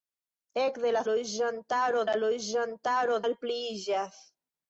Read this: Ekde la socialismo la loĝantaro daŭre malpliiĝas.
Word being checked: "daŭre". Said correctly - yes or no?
no